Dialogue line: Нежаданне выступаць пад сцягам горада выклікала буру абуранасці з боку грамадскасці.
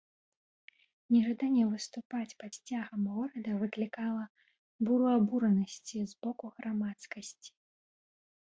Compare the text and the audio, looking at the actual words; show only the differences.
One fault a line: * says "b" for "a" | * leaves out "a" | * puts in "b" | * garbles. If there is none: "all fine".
all fine